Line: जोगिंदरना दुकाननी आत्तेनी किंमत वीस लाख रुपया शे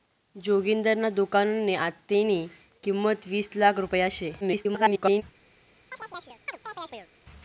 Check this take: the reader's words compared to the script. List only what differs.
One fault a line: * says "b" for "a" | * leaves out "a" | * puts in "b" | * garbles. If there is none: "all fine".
* garbles